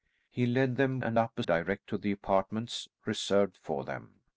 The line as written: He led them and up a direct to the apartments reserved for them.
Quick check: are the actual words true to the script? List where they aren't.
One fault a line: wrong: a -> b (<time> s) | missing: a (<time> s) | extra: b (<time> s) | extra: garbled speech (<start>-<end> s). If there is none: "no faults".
no faults